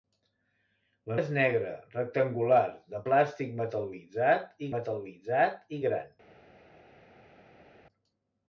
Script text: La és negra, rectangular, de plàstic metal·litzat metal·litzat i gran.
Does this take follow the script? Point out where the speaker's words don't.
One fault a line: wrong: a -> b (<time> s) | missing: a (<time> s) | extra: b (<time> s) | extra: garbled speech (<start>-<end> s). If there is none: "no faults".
no faults